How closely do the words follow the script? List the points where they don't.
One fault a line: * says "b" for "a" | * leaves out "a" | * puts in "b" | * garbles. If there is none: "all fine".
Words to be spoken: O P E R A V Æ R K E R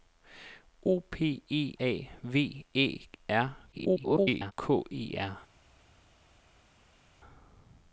* leaves out "R"
* garbles